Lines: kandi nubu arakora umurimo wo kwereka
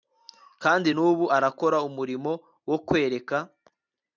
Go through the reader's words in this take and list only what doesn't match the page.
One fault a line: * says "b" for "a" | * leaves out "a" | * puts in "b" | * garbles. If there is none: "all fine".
all fine